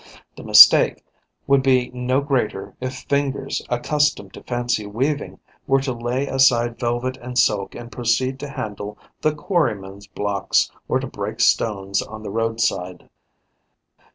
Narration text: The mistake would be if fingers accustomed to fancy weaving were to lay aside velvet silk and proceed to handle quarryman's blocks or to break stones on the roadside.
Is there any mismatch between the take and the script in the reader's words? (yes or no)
yes